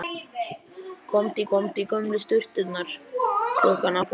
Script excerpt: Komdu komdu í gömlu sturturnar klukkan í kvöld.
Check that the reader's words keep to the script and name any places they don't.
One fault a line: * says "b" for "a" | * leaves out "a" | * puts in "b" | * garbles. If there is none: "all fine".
all fine